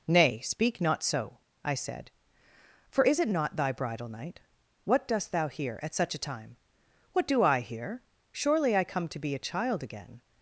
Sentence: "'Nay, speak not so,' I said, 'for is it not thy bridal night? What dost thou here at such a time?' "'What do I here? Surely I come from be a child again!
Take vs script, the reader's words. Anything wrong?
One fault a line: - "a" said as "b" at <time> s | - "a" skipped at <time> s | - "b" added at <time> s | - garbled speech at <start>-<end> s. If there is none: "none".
- "from" said as "to" at 9.1 s